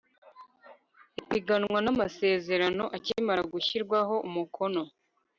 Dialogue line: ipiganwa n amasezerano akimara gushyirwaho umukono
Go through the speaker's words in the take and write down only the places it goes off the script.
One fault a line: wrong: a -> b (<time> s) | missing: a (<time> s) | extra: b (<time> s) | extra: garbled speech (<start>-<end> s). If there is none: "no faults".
no faults